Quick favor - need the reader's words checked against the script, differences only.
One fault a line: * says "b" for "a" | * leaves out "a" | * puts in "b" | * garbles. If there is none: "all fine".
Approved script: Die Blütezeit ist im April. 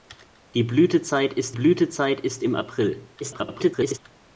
* puts in "Blütezeit ist"
* garbles